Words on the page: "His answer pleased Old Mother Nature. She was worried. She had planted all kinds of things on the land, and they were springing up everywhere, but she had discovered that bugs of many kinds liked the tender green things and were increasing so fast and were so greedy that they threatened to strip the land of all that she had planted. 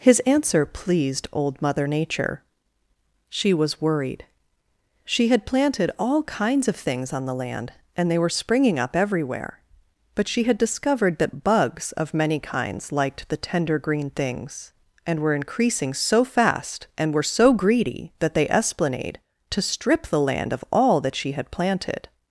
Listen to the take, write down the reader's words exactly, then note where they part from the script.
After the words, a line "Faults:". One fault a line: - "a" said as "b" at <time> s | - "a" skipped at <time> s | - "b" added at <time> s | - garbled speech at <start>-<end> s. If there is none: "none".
"His answer pleased Old Mother Nature. She was worried. She had planted all kinds of things on the land, and they were springing up everywhere, but she had discovered that bugs of many kinds liked the tender green things and were increasing so fast and were so greedy that they esplanade to strip the land of all that she had planted.
Faults:
- "threatened" said as "esplanade" at 18.5 s